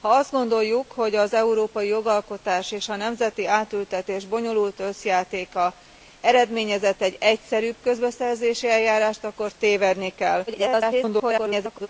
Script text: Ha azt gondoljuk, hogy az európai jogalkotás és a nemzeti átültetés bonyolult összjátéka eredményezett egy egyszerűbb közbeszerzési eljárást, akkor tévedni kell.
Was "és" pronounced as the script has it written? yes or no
yes